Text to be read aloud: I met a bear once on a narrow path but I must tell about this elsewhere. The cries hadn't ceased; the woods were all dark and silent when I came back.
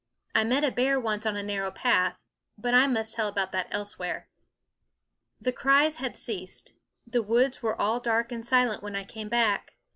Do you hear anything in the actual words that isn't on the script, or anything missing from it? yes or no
yes